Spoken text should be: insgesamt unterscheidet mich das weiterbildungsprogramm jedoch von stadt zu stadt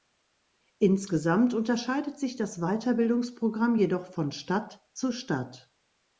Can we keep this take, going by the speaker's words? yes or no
no